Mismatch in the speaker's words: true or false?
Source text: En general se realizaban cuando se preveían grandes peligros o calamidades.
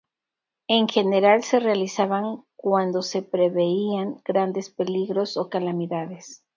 false